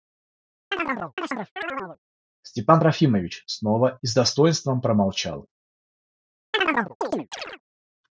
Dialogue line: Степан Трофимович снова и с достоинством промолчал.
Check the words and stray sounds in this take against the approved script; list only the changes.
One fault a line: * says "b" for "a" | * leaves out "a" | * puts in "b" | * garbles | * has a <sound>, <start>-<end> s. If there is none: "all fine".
* has a chirp, 0.7-2.0 s
* has a chirp, 6.5-7.6 s